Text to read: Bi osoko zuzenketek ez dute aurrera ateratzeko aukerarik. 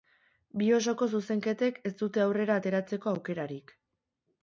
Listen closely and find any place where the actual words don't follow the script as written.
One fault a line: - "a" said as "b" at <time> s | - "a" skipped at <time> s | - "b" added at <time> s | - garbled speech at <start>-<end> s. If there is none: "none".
none